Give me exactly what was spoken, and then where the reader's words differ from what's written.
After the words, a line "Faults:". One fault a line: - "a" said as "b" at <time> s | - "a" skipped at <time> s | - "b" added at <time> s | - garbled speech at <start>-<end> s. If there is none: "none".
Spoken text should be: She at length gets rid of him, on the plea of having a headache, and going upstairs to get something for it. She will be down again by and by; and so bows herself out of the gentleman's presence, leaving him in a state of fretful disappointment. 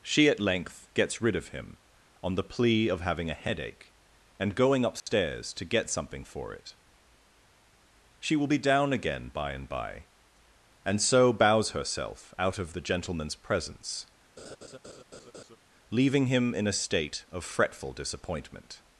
She at length gets rid of him, on the plea of having a headache, and going upstairs to get something for it. She will be down again by and by; and so bows herself out of the gentleman's presence, leaving him in a state of fretful disappointment.
Faults:
none